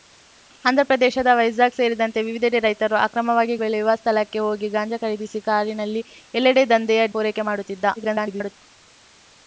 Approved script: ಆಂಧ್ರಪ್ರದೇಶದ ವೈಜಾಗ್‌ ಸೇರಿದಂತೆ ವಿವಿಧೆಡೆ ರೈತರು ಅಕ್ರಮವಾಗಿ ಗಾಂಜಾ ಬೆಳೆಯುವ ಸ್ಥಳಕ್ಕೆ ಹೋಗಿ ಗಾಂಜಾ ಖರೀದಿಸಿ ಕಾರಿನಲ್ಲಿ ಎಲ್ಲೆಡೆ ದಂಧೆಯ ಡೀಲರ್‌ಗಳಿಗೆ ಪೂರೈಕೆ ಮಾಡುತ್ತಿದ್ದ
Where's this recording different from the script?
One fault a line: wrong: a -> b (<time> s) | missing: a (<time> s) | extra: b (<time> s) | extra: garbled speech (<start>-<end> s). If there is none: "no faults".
missing: ಗಾಂಜಾ (3.6 s)
missing: ಡೀಲರ್‌ಗಳಿಗೆ (7.0 s)
extra: garbled speech (8.0-8.6 s)